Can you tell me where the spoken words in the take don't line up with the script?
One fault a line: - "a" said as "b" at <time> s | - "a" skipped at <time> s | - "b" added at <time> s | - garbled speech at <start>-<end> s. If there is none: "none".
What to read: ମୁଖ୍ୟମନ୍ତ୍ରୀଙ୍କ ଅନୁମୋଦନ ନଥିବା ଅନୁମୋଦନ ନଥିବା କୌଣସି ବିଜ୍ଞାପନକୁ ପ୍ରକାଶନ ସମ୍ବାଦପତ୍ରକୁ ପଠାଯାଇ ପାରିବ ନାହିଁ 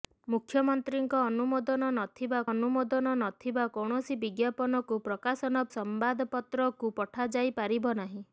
none